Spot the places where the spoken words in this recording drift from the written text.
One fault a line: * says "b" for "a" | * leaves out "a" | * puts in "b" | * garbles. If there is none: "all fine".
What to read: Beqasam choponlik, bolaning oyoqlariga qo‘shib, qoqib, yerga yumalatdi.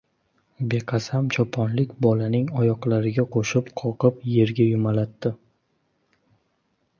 all fine